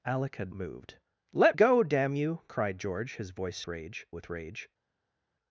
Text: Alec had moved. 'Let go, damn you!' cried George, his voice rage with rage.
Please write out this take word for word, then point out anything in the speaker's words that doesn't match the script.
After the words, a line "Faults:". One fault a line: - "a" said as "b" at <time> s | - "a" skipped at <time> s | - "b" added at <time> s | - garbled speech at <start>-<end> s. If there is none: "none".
Alec had moved. 'Let go, damn you!' cried George, his voice rage with rage.
Faults:
none